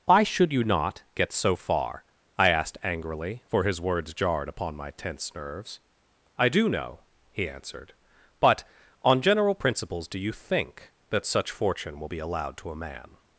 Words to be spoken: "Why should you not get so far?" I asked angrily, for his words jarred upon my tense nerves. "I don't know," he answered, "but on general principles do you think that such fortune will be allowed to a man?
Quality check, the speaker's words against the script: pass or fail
fail